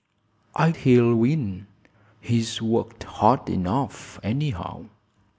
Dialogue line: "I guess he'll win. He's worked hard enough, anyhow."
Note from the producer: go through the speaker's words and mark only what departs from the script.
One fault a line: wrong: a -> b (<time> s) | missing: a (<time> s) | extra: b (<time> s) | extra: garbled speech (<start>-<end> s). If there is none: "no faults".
missing: guess (0.7 s)